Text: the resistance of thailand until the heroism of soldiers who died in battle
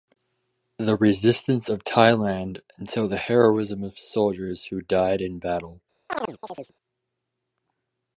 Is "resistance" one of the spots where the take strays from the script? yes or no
no